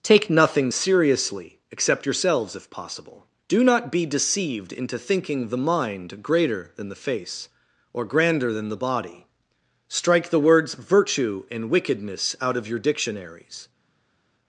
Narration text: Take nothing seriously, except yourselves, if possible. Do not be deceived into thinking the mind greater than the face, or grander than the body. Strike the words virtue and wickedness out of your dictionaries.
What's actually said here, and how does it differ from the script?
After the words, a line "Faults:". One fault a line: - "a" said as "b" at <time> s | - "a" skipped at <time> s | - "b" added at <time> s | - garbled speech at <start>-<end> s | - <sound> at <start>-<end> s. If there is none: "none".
Take nothing seriously, except yourselves, if possible. Do not be deceived into thinking the mind greater than the face, or grander than the body. Strike the words virtue and wickedness out of your dictionaries.
Faults:
none